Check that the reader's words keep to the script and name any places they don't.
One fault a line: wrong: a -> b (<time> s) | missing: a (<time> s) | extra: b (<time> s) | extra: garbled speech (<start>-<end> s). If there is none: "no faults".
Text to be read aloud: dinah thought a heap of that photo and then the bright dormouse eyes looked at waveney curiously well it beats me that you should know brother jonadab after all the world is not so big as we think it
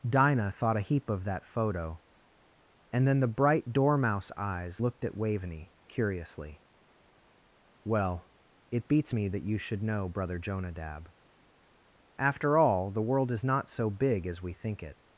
no faults